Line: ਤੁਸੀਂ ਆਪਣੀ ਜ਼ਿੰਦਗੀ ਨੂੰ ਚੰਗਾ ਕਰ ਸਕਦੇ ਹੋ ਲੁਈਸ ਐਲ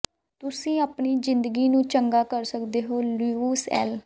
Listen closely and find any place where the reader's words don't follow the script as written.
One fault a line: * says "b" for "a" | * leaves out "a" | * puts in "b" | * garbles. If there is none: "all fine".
all fine